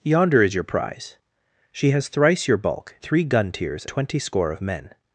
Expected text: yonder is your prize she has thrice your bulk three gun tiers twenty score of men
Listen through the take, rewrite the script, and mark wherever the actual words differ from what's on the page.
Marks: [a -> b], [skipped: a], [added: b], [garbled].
yonder is your prize she has thrice your bulk three gun tiers twenty score of men